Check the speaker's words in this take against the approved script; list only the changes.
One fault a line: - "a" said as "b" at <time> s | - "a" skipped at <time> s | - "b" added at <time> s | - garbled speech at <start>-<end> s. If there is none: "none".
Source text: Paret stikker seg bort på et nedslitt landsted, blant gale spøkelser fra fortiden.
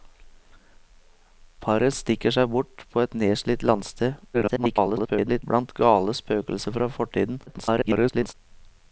- garbled speech at 4.3-5.4 s
- garbled speech at 7.5-8.3 s